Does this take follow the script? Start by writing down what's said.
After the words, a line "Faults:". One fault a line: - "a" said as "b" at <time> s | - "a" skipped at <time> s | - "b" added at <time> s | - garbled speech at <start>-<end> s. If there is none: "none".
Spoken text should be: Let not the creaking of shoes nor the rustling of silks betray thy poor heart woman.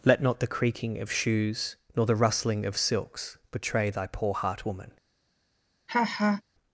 Let not the creaking of shoes nor the rustling of silks betray thy poor heart woman.
Faults:
none